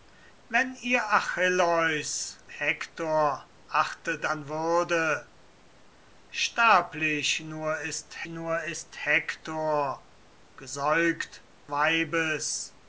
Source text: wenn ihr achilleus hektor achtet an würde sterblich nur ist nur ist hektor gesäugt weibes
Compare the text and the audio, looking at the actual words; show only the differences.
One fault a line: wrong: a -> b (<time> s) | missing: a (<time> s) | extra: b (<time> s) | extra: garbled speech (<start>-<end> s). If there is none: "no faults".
no faults